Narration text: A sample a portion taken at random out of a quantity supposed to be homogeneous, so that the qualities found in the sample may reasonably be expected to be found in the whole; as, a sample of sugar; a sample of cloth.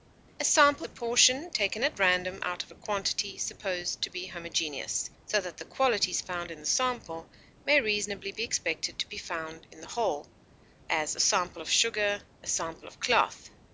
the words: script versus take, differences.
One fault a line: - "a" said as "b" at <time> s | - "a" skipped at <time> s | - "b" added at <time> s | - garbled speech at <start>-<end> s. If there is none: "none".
none